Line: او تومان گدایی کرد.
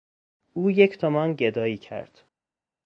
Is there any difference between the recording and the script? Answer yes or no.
yes